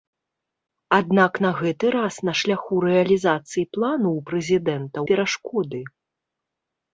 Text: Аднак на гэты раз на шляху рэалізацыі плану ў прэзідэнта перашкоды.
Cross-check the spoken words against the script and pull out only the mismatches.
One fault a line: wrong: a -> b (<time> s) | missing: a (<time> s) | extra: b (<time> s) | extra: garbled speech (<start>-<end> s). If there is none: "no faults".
no faults